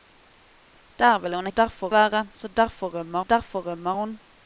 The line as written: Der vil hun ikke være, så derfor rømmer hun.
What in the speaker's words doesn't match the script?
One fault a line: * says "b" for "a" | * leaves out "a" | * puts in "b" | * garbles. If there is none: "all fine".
* says "derfor" for "ikke"
* puts in "derfor rømmer"